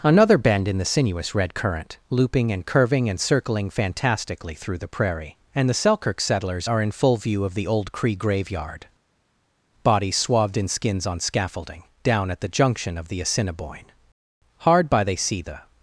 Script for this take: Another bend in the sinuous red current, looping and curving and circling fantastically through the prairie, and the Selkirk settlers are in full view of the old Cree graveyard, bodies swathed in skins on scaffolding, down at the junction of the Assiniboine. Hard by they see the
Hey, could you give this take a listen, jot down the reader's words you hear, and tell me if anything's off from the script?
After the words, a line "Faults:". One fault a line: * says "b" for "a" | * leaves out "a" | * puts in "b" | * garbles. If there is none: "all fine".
Another bend in the sinuous red current, looping and curving and circling fantastically through the prairie, and the Selkirk settlers are in full view of the old Cree graveyard, bodies swathed in skins on scaffolding, down at the junction of the Assiniboine. Hard by they see the
Faults:
all fine